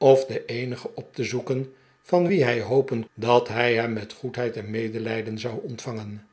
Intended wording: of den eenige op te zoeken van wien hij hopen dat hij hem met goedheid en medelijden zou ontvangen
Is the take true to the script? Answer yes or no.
yes